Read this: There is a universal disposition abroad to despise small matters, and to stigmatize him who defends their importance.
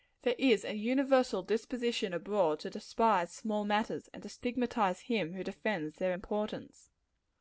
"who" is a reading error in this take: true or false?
false